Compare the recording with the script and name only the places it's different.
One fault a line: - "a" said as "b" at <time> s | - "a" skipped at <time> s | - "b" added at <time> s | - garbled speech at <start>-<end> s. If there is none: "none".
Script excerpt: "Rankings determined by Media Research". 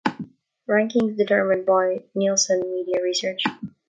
- "Nielsen" added at 2.1 s